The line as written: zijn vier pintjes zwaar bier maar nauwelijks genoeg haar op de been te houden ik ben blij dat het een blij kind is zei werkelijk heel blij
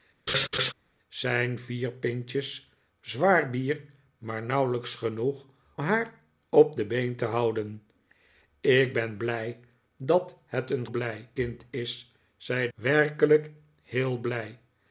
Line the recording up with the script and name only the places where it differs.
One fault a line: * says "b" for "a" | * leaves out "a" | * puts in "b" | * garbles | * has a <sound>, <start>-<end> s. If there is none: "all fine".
* has a laugh, 0.3-0.7 s